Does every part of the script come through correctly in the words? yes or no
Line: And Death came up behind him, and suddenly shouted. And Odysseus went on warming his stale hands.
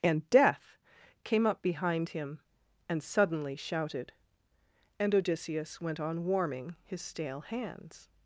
yes